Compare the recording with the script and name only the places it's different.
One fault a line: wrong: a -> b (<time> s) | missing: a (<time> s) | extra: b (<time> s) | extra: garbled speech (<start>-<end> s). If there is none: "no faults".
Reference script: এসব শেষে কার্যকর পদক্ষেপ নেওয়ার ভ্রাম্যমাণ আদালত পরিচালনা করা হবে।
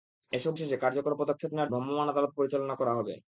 no faults